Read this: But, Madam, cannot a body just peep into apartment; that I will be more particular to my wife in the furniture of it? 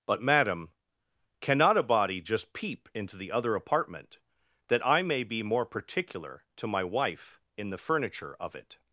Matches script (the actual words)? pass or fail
fail